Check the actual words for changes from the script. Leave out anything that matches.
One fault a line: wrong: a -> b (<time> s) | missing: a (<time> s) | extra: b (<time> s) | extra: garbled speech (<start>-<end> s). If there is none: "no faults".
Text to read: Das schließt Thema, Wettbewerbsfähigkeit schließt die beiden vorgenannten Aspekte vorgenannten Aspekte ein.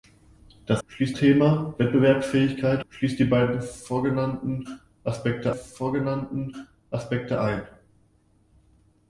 no faults